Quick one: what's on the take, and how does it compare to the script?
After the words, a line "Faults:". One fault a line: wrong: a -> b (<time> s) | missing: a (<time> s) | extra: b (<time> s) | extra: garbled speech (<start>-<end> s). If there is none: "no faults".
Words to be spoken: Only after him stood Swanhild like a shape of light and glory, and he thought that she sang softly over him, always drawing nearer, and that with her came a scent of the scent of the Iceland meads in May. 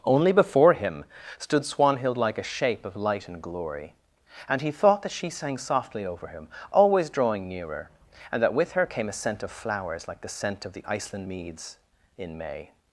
Only before him stood Swanhild like a shape of light and glory, and he thought that she sang softly over him, always drawing nearer, and that with her came a scent of flowers like the scent of the Iceland meads in May.
Faults:
wrong: after -> before (0.3 s)
extra: flowers like (9.5 s)